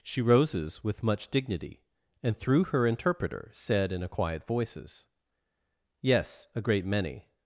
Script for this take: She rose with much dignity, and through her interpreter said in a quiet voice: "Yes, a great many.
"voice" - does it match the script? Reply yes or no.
no